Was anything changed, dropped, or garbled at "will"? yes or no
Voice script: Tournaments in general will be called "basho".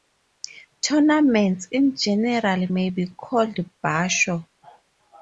yes